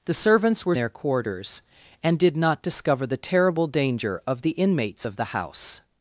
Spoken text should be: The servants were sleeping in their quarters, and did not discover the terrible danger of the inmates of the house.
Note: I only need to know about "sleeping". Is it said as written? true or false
false